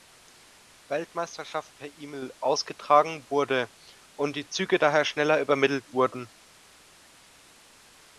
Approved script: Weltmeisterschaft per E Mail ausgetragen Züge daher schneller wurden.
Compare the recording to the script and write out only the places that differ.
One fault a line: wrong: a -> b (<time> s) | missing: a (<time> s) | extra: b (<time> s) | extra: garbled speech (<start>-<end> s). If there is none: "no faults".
extra: wurde und die (3.3 s)
extra: übermittelt (5.4 s)